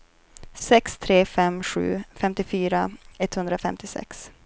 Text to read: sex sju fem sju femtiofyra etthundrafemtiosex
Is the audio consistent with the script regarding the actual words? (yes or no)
no